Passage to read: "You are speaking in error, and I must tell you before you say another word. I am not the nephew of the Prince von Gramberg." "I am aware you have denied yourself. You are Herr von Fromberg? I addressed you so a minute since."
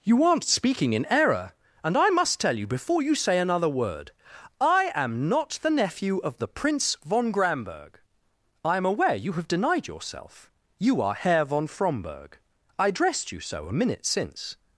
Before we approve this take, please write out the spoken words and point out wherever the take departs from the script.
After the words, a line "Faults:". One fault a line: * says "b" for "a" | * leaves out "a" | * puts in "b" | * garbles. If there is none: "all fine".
"You aren't speaking in error, and I must tell you before you say another word. I am not the nephew of the Prince von Gramberg." "I am aware you have denied yourself. You are Herr von Fromberg? I addressed you so a minute since."
Faults:
* says "aren't" for "are"